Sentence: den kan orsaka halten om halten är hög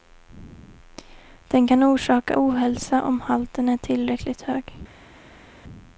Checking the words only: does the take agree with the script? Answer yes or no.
no